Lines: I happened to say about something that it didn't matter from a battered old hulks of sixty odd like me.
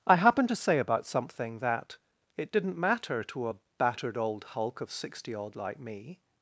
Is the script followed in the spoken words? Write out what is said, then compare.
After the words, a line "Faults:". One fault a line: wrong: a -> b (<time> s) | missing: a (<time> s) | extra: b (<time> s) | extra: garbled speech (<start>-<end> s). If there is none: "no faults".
I happened to say about something that it didn't matter to a battered old hulk of sixty odd like me.
Faults:
wrong: from -> to (3.2 s)
wrong: hulks -> hulk (4.4 s)